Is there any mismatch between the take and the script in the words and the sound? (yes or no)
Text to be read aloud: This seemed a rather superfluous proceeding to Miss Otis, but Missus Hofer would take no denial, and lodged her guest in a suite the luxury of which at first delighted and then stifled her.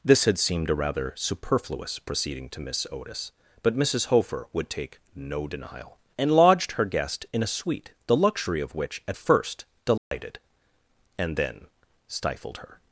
yes